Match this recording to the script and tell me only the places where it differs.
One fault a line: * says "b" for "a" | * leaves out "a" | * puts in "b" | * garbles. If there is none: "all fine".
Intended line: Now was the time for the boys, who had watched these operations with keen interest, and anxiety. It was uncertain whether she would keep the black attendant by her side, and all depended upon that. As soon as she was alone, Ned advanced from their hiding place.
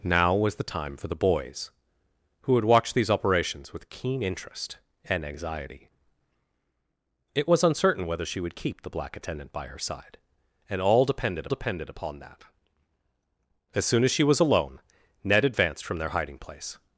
* puts in "depended"